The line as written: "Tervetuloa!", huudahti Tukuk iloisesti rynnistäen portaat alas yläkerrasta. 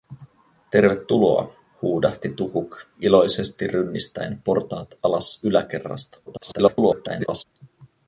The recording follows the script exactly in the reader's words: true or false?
false